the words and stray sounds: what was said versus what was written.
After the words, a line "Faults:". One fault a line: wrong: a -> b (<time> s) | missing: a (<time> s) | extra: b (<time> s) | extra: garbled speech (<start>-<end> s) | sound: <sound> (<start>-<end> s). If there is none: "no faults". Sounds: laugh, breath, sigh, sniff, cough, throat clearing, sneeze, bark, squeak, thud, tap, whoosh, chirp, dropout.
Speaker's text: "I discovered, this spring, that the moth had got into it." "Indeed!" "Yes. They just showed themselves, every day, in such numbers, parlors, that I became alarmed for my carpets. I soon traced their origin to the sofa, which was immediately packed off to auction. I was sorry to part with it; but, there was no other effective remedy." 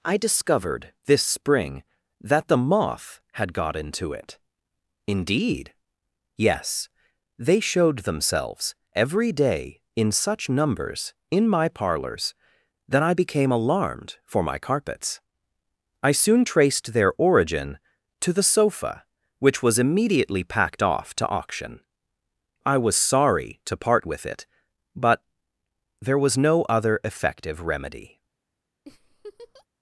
"I discovered, this spring, that the moth had got into it." "Indeed!" "Yes. They showed themselves, every day, in such numbers, in my parlors, that I became alarmed for my carpets. I soon traced their origin to the sofa, which was immediately packed off to auction. I was sorry to part with it; but, there was no other effective remedy."
Faults:
missing: just (7.6 s)
extra: in my (11.3 s)
sound: laugh (28.9-29.7 s)